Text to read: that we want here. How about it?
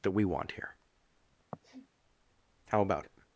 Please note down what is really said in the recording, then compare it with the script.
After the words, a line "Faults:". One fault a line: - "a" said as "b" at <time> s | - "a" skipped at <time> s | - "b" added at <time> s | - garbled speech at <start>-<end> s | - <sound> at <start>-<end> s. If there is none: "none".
that we want here. How about it?
Faults:
- sniff at 1.5-1.9 s